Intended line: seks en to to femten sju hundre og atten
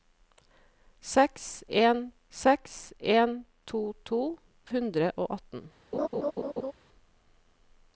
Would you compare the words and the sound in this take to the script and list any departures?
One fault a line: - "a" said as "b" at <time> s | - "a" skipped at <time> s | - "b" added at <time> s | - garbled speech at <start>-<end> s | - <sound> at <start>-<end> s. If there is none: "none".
- "seks en" added at 2.4 s
- "femten sju" skipped at 4.2 s
- laugh at 5.9-6.7 s